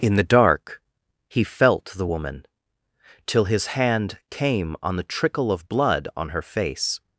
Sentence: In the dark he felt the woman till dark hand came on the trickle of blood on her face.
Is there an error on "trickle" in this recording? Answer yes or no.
no